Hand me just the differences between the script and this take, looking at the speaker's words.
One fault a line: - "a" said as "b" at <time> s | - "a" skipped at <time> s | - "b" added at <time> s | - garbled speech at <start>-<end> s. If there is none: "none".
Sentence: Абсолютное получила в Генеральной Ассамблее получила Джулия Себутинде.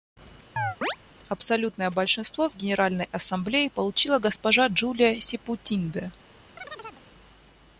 - "получила" said as "большинство" at 1.9 s
- "госпожа" added at 4.2 s